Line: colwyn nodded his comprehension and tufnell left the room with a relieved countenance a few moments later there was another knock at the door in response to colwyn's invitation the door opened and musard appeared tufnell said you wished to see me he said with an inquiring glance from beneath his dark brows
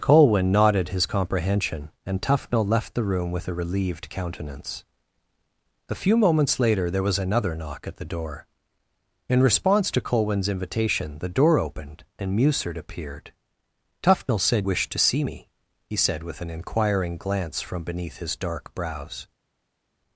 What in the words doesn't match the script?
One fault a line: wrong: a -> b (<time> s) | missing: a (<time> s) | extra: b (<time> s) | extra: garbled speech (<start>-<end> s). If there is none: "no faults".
missing: you (14.7 s)